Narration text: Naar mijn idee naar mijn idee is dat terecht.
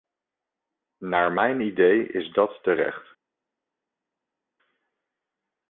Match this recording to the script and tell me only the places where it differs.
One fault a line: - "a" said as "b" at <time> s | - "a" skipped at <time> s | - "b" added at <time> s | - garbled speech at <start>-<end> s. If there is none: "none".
- "naar mijn idee" skipped at 2.1 s